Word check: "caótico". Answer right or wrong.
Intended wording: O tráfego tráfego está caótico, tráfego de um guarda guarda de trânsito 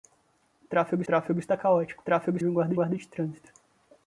right